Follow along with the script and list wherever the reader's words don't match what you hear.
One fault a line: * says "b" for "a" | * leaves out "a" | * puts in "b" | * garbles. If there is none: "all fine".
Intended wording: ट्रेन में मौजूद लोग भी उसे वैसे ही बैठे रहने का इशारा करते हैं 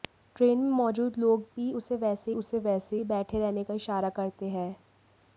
* puts in "उसे वैसे"